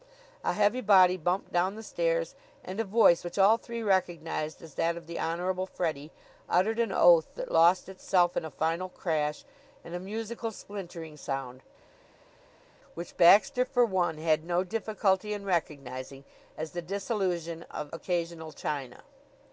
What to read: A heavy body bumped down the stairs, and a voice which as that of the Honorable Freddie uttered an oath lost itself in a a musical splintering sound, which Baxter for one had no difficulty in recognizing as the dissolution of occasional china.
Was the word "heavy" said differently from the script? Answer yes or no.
no